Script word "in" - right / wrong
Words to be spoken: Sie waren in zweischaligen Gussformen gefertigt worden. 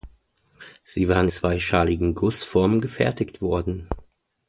wrong